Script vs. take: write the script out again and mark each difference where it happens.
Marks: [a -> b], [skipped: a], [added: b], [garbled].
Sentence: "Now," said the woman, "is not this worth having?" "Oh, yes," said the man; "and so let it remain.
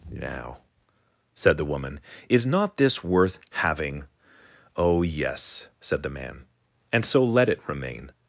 "Now," said the woman, "is not this worth having?" "Oh, yes," said the man; "and so let it remain.